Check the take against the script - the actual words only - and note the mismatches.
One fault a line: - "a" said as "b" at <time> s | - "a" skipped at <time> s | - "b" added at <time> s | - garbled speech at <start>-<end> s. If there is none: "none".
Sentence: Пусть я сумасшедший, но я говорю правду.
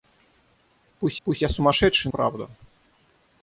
- "пусть" added at 1.2 s
- "но я говорю" skipped at 2.1 s